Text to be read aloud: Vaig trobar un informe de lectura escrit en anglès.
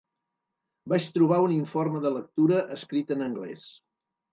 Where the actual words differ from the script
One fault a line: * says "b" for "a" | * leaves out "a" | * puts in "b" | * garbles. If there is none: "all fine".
all fine